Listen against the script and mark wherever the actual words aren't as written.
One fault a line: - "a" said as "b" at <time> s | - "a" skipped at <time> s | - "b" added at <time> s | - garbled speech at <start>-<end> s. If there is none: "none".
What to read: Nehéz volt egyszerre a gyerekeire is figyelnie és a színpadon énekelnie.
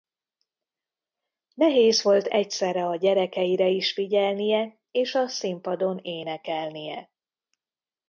none